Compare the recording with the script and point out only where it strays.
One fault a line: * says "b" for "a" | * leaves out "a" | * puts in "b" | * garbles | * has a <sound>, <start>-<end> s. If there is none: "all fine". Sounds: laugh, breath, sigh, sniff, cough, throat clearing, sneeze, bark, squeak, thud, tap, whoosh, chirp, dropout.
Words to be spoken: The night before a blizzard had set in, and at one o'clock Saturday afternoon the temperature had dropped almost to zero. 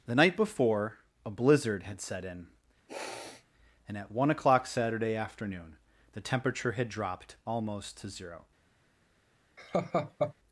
* has a sniff, 2.9-3.5 s
* has a laugh, 9.6-10.3 s